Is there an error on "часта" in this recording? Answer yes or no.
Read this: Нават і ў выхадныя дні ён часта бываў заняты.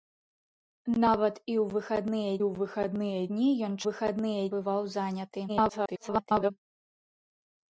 yes